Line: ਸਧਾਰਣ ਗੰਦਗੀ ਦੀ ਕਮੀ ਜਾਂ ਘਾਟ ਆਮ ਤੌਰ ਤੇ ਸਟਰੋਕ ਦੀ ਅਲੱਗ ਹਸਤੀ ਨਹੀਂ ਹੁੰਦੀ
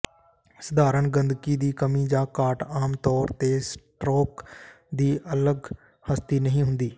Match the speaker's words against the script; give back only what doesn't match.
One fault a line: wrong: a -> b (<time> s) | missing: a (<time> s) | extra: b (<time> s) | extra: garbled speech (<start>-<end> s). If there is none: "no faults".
no faults